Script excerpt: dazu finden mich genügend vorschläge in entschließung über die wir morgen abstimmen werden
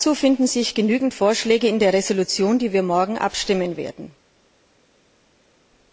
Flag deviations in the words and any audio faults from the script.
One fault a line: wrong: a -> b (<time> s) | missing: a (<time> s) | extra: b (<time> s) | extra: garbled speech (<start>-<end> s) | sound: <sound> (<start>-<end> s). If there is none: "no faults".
wrong: mich -> sich (0.5 s)
extra: der (1.8 s)